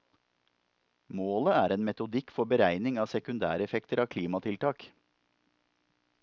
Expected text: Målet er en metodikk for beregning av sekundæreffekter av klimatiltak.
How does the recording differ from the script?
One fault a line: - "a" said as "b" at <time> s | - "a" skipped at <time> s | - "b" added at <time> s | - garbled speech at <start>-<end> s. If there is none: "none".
none